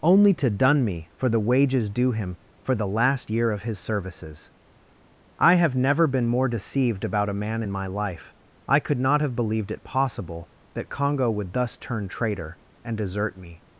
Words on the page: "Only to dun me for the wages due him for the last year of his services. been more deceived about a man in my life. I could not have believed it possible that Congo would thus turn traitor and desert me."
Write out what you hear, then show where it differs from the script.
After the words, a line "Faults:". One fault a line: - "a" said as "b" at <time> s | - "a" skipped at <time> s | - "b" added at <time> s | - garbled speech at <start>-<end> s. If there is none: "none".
"Only to dun me for the wages due him for the last year of his services. I have never been more deceived about a man in my life. I could not have believed it possible that Congo would thus turn traitor and desert me."
Faults:
- "I have never" added at 5.4 s